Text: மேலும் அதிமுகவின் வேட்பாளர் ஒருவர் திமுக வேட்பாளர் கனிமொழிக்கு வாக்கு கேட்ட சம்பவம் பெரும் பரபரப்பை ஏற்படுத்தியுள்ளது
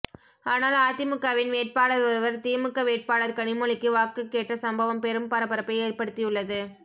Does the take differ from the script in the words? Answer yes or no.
yes